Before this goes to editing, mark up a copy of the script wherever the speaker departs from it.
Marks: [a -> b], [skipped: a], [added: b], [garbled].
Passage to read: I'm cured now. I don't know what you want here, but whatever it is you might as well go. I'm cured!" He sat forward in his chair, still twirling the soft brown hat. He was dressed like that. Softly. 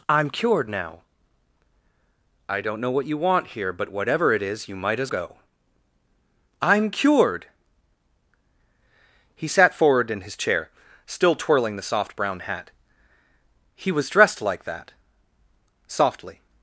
I'm cured now. I don't know what you want here, but whatever it is you might as [skipped: well] go. I'm cured!" He sat forward in his chair, still twirling the soft brown hat. He was dressed like that. Softly.